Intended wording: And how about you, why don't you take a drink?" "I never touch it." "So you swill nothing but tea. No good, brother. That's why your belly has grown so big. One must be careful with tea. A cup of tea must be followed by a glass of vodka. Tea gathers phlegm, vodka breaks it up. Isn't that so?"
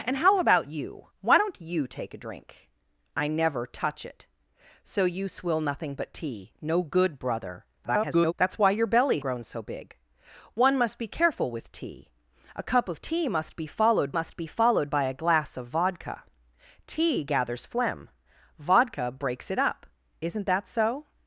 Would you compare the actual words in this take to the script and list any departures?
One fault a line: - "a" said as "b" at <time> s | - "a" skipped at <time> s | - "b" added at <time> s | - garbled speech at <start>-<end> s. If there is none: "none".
- garbled speech at 7.8-8.3 s
- "has" skipped at 9.2 s
- "must be followed" added at 14.1 s